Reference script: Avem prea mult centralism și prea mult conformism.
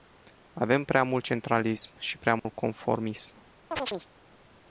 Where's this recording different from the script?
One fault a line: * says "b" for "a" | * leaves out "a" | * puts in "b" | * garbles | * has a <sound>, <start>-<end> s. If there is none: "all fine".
* has a dropout, 2.4-2.4 s
* has a chirp, 3.7-4.1 s